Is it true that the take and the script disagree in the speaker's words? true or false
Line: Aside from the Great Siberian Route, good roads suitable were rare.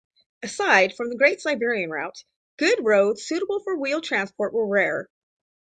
true